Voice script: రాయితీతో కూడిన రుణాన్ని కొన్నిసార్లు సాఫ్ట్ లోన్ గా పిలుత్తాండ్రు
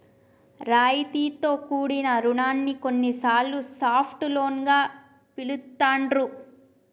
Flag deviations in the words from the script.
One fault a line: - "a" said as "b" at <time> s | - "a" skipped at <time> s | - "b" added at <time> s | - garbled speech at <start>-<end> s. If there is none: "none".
none